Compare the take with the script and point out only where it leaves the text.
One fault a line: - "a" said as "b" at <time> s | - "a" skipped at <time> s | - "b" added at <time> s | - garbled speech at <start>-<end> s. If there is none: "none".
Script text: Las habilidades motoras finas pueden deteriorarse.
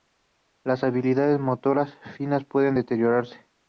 none